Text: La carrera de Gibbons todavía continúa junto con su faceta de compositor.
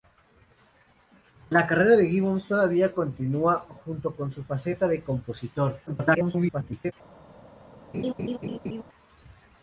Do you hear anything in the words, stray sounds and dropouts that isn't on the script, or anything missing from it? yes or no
yes